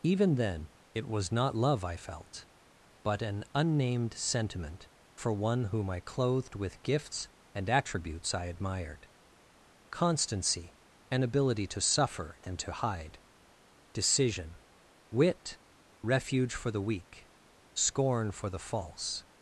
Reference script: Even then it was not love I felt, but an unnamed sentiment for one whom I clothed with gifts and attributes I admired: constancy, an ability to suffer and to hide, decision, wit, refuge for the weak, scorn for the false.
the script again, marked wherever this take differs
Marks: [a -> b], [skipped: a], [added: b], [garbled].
Even then it was not love I felt, but an unnamed sentiment for one whom I clothed with gifts and attributes I admired: constancy, an ability to suffer and to hide, decision, wit, refuge for the weak, scorn for the false.